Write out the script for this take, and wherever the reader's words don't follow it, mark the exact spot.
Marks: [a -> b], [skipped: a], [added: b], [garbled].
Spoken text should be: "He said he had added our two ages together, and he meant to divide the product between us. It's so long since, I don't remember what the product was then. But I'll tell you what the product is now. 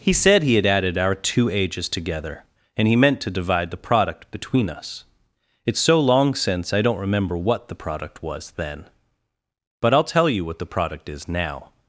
"He said he had added our two ages together, and he meant to divide the product between us. It's so long since, I don't remember what the product was then. But I'll tell you what the product is now.